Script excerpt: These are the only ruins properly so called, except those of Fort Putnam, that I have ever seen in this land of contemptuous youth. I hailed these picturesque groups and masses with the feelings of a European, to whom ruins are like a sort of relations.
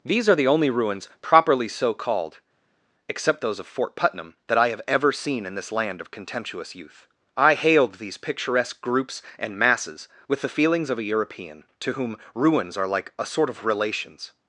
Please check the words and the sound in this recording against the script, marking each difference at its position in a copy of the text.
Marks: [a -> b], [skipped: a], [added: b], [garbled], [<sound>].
These are the only ruins properly so called, except those of Fort Putnam, that I have ever seen in this land of contemptuous youth. I hailed these picturesque groups and masses with the feelings of a European, to whom ruins are like a sort of relations.